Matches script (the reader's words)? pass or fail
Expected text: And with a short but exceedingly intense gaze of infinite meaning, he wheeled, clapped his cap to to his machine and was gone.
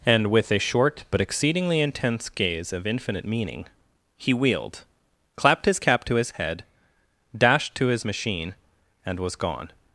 fail